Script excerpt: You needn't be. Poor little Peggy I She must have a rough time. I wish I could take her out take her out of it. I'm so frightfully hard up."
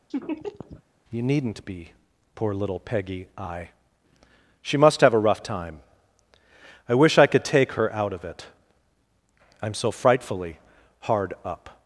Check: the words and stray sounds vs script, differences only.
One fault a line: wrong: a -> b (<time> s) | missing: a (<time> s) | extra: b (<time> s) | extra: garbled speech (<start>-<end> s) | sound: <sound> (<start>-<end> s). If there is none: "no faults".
sound: laugh (0.1-0.8 s)
missing: take her out (8.1 s)